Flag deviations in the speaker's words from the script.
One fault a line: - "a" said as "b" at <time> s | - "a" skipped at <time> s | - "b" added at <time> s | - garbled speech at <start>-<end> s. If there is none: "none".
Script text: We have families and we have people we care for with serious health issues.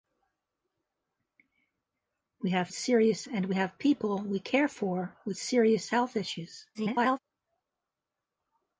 - "families" said as "serious" at 2.7 s
- garbled speech at 6.7-7.2 s